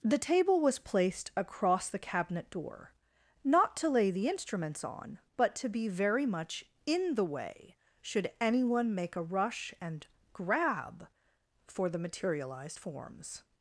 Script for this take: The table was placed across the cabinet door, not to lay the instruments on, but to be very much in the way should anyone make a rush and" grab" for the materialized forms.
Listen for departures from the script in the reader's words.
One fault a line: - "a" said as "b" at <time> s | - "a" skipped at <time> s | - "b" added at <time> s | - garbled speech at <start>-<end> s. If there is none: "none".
none